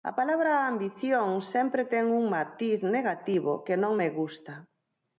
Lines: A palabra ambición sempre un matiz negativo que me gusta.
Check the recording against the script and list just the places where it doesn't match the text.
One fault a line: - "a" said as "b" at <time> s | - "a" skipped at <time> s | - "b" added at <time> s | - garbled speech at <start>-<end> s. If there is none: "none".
- "ten" added at 1.9 s
- "non" added at 3.8 s